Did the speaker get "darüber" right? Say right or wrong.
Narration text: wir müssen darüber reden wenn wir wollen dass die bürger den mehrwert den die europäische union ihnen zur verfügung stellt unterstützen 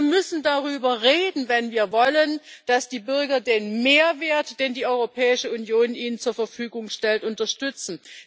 right